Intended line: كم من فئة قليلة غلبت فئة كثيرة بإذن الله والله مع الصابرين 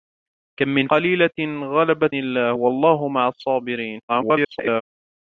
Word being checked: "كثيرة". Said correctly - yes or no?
no